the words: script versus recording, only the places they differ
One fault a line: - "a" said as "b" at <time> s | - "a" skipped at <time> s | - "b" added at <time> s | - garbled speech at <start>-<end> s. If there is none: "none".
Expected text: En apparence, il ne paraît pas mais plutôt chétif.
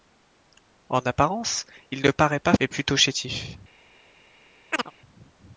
none